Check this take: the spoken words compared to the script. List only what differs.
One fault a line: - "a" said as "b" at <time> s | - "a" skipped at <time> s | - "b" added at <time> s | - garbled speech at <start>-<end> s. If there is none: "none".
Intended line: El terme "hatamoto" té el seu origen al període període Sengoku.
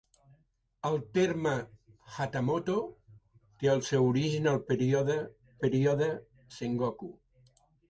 none